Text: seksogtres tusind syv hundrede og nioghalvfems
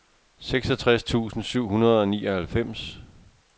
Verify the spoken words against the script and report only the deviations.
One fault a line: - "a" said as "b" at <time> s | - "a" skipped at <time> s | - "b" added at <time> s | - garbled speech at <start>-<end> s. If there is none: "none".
none